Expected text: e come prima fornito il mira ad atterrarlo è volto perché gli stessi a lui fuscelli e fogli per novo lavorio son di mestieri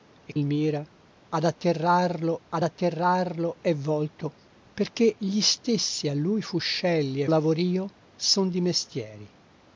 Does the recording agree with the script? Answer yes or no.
no